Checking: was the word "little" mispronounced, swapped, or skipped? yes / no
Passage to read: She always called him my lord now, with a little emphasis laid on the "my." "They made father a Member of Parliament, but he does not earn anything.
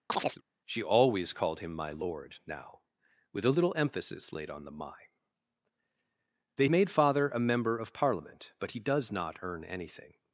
no